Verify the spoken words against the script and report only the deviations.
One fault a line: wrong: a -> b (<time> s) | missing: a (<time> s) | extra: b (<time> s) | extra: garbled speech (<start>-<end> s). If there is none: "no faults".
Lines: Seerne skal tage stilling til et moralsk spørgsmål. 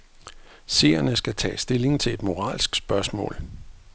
no faults